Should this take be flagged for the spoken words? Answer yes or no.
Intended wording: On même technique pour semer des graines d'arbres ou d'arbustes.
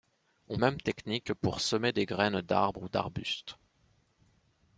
no